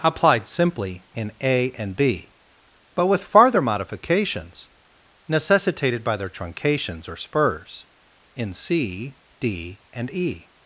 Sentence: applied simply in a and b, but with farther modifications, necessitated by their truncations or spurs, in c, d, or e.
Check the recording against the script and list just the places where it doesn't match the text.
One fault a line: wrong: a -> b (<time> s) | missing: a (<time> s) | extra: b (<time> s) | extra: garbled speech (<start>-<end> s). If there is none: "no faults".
wrong: or -> and (9.9 s)